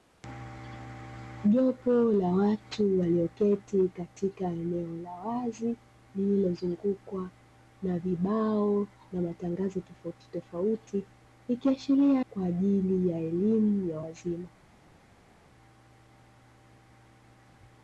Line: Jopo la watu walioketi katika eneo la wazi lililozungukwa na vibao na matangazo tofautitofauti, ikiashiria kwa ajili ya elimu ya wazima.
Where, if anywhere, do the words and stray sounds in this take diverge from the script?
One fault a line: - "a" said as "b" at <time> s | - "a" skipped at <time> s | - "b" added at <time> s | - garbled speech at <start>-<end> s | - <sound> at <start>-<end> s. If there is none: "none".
none